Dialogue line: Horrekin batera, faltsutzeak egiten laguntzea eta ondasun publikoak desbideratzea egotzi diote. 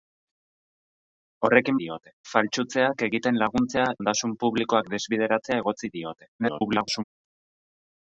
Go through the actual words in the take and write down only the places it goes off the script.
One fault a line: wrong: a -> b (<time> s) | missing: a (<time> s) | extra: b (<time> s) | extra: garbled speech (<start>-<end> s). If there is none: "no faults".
wrong: batera -> diote (1.8 s)
missing: eta (3.9 s)
extra: garbled speech (6.4-7.0 s)